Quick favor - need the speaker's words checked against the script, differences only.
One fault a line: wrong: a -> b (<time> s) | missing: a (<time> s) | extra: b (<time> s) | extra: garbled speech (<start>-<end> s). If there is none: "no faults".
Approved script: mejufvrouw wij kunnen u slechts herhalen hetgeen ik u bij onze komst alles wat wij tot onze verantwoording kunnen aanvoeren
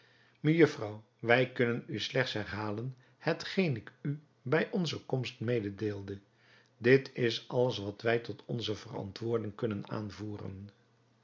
extra: mededeelde dit is (5.4 s)